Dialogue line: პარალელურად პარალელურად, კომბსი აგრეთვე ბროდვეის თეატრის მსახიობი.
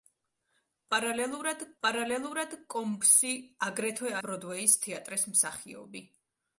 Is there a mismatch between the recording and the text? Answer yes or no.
no